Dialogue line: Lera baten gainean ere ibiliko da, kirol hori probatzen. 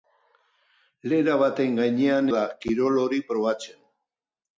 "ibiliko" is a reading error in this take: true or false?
true